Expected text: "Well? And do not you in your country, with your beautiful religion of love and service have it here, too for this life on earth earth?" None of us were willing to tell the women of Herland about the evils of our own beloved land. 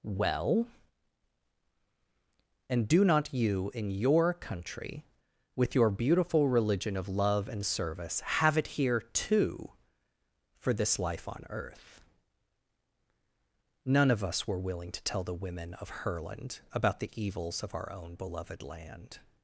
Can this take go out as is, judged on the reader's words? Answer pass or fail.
fail